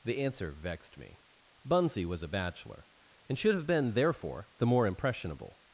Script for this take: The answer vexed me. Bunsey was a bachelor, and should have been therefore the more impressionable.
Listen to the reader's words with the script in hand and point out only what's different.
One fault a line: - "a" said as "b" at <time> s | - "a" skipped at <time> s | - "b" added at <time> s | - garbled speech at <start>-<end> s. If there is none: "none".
none